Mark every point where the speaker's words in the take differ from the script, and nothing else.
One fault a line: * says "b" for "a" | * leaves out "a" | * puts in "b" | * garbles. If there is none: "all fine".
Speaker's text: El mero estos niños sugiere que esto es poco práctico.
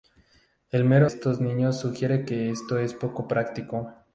all fine